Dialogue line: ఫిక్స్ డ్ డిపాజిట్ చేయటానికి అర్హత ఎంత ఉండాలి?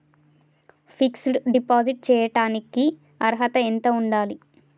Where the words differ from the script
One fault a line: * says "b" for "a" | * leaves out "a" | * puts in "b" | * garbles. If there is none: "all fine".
all fine